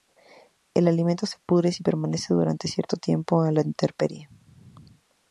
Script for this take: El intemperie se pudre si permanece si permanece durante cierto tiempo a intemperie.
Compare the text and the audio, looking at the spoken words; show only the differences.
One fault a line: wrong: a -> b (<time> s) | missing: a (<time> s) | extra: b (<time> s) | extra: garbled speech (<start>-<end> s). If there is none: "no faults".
wrong: intemperie -> alimento (0.9 s)
missing: si permanece (2.3 s)
extra: la (3.5 s)